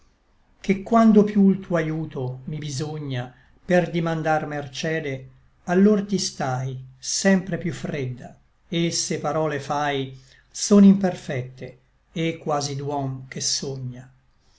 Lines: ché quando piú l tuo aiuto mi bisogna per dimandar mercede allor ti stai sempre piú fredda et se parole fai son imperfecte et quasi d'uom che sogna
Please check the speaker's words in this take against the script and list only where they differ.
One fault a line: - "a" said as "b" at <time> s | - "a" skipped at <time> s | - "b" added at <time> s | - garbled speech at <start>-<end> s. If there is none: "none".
none